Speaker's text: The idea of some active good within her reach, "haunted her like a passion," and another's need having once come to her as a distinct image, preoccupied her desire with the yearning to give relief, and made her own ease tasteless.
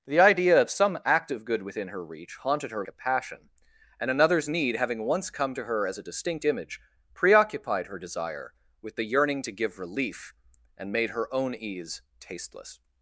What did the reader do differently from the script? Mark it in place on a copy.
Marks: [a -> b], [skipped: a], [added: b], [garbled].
The idea of some active good within her reach, "haunted her [skipped: like] a passion," and another's need having once come to her as a distinct image, preoccupied her desire with the yearning to give relief, and made her own ease tasteless.